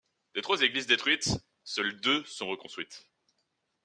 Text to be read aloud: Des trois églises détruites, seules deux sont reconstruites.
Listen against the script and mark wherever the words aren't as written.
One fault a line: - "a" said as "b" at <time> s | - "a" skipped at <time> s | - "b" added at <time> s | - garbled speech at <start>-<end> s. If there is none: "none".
none